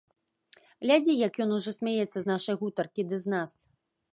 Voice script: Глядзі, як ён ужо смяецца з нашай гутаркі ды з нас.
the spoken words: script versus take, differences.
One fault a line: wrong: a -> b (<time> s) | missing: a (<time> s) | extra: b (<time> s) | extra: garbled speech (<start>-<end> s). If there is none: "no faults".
no faults